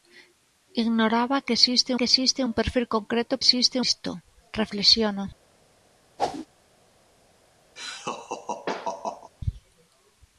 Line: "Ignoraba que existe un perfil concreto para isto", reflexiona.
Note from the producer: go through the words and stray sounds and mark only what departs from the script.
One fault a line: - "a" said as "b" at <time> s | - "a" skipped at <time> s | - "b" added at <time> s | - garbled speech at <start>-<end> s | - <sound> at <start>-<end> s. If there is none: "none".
- "que existe" added at 2.0 s
- "para" said as "existe" at 3.4 s
- whoosh at 6.2-6.5 s
- laugh at 7.8-9.3 s